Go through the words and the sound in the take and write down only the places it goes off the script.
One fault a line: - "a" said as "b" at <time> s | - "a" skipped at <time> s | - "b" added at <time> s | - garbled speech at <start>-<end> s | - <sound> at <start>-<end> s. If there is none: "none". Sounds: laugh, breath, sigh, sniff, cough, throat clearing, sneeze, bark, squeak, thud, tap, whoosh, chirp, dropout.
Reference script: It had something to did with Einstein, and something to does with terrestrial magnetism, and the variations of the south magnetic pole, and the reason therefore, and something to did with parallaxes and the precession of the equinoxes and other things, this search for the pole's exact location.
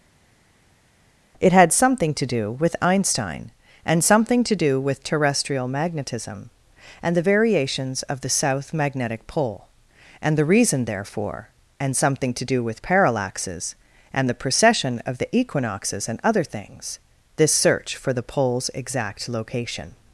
- "did" said as "do" at 2.3 s
- "does" said as "do" at 4.6 s
- "did" said as "do" at 12.5 s